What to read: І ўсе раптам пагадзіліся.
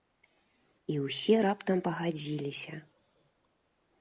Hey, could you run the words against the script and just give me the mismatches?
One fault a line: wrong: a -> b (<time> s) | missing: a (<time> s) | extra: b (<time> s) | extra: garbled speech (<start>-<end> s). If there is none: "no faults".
no faults